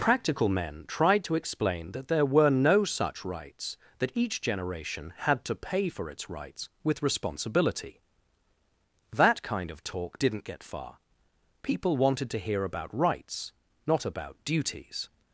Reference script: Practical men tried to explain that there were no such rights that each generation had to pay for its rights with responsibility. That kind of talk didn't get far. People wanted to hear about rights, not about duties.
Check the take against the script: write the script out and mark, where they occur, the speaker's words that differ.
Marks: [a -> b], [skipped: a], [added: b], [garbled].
Practical men tried to explain that there were no such rights that each generation had to pay for its rights with responsibility. That kind of talk didn't get far. People wanted to hear about rights, not about duties.